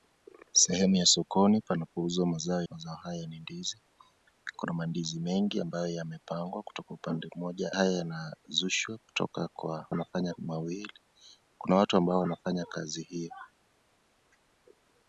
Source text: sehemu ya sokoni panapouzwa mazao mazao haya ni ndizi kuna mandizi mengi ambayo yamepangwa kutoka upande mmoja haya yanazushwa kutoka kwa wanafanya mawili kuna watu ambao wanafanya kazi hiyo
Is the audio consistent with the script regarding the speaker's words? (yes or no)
yes